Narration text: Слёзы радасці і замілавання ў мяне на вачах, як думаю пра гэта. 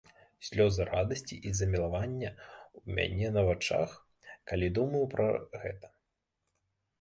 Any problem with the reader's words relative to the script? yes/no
yes